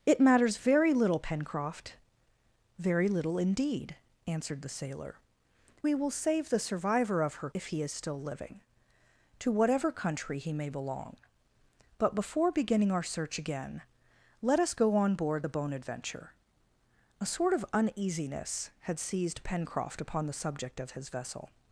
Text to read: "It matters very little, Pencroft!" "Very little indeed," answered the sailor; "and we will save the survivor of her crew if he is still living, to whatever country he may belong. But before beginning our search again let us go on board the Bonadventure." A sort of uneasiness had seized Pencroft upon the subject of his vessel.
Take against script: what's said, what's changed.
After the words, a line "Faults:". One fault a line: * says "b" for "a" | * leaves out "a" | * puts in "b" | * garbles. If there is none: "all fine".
"It matters very little, Pencroft!" "Very little indeed," answered the sailor; "we will save the survivor of her if he is still living, to whatever country he may belong. But before beginning our search again let us go on board the Bonadventure." A sort of uneasiness had seized Pencroft upon the subject of his vessel.
Faults:
* leaves out "and"
* leaves out "crew"